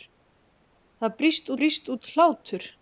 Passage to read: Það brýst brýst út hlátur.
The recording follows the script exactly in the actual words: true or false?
true